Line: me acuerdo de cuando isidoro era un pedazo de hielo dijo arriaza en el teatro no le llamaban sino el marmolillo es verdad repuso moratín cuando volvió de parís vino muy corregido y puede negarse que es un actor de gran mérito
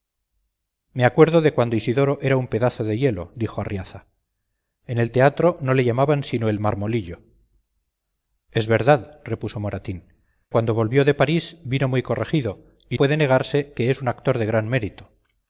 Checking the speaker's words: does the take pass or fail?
pass